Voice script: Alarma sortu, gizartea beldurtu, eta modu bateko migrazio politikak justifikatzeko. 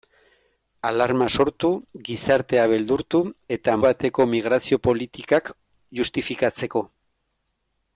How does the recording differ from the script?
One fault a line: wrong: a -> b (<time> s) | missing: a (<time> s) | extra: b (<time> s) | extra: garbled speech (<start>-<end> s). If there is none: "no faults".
missing: modu (3.7 s)